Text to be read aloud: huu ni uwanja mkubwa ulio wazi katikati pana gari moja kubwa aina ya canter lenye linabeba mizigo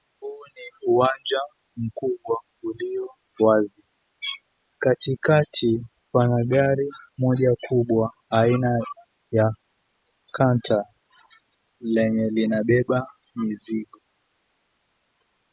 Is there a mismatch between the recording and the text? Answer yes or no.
no